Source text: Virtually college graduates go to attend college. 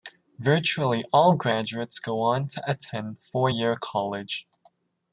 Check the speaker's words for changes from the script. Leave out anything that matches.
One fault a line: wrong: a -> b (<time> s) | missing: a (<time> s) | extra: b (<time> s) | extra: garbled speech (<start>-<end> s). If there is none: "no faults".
wrong: college -> all (1.1 s)
extra: on (2.2 s)
extra: four year (3.2 s)